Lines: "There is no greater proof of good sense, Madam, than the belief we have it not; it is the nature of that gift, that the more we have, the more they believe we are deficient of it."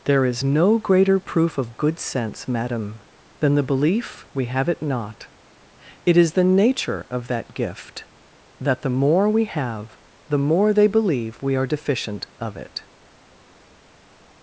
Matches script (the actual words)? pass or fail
pass